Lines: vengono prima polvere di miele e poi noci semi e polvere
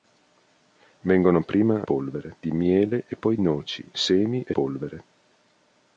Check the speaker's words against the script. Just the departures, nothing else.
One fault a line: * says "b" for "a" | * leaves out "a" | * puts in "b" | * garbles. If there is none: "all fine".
all fine